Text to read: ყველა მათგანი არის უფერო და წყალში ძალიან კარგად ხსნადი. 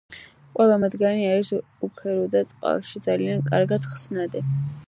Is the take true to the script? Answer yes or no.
yes